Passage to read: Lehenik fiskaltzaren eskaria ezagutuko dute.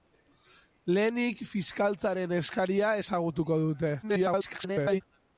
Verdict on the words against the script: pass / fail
fail